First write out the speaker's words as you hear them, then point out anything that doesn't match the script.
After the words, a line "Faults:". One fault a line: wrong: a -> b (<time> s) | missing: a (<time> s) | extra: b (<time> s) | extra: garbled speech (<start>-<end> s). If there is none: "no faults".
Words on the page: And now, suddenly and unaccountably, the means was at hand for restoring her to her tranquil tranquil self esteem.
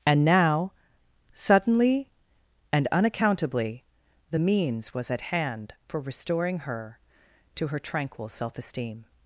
And now, suddenly and unaccountably, the means was at hand for restoring her to her tranquil self esteem.
Faults:
missing: tranquil (8.3 s)